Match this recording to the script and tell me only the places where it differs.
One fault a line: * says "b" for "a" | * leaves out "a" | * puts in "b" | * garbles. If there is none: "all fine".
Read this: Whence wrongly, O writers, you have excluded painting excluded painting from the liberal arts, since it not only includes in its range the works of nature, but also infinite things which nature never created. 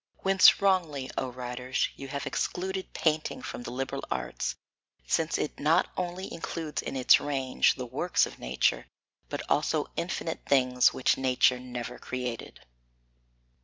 * leaves out "excluded painting"